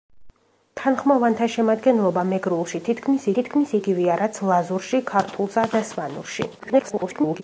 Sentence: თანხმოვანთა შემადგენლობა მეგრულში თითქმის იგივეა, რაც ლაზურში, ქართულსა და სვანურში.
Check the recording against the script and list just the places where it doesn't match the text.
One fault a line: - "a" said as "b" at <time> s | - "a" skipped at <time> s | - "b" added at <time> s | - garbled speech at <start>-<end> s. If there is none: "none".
- "თითქმის" added at 3.4 s
- garbled speech at 6.6-7.4 s